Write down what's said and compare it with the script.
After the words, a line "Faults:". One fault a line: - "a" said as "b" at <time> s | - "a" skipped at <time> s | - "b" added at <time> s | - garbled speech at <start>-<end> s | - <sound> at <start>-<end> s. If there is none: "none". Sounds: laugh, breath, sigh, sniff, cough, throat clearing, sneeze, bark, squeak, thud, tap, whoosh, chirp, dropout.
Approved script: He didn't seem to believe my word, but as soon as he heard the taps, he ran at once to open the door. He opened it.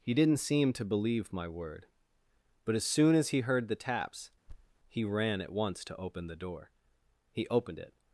He didn't seem to believe my word, but as soon as he heard the taps, he ran at once to open the door. He opened it.
Faults:
- thud at 4.5-4.8 s